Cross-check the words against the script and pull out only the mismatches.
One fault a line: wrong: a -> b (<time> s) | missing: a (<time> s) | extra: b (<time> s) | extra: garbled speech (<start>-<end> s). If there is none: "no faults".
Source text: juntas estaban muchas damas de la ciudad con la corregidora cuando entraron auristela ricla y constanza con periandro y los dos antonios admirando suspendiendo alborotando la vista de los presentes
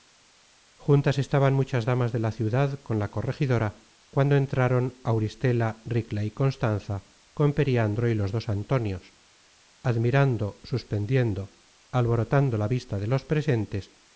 no faults